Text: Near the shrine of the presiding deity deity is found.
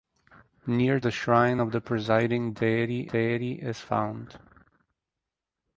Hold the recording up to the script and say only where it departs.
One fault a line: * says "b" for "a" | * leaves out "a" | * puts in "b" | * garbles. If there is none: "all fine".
all fine